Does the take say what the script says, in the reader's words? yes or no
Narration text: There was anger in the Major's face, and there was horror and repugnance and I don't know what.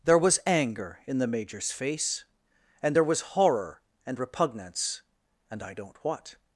no